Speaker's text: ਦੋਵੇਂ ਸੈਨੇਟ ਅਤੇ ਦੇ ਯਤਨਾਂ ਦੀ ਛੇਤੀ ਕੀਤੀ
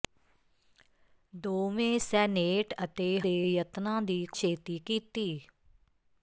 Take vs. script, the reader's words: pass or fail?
pass